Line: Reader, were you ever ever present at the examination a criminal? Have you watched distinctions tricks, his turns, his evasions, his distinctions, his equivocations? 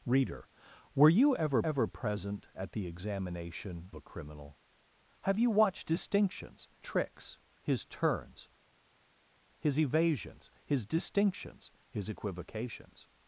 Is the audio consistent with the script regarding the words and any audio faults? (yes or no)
yes